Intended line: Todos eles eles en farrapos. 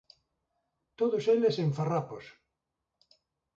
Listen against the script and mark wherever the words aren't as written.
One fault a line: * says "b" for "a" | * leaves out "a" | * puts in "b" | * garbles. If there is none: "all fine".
* leaves out "eles"